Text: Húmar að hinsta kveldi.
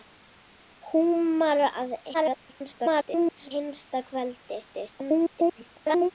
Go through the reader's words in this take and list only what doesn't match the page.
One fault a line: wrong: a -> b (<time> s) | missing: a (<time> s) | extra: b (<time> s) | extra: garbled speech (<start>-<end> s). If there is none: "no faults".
extra: garbled speech (2.1-3.5 s)
extra: garbled speech (4.7-6.1 s)